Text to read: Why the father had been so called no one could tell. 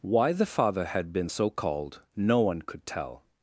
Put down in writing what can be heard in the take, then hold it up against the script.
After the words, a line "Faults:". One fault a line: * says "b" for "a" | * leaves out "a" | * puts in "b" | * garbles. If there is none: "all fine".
Why the father had been so called no one could tell.
Faults:
all fine